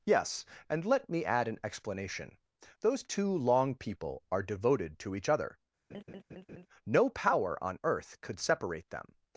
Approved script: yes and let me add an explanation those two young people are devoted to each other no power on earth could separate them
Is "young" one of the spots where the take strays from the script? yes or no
yes